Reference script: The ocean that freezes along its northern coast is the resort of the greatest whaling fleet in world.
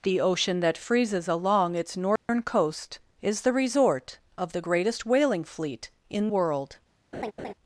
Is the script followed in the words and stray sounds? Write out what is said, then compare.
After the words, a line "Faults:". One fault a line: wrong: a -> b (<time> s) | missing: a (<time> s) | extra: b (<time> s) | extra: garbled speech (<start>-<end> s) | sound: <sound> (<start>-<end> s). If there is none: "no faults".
The ocean that freezes along its northern coast is the resort of the greatest whaling fleet in world.
Faults:
sound: dropout (2.2-2.3 s)
sound: laugh (7.1-7.5 s)